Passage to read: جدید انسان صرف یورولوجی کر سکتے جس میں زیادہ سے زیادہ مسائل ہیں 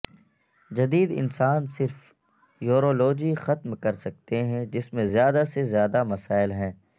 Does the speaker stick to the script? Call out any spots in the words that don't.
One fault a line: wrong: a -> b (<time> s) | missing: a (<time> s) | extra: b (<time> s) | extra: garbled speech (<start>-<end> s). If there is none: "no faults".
extra: ختم (3.4 s)
extra: ہیں (4.4 s)